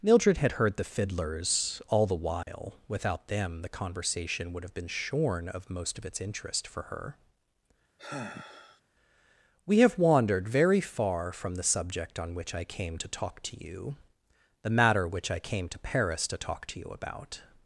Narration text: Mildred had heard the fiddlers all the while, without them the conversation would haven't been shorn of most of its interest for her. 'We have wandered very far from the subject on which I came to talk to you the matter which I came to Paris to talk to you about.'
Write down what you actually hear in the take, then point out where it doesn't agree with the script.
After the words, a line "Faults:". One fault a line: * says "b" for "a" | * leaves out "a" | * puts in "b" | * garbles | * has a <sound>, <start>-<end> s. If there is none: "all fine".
Mildred had heard the fiddlers all the while, without them the conversation would have been shorn of most of its interest for her. 'We have wandered very far from the subject on which I came to talk to you the matter which I came to Paris to talk to you about.'
Faults:
* has a dropout, 2.4-2.5 s
* says "have" for "haven't"
* has a sigh, 8.0-8.8 s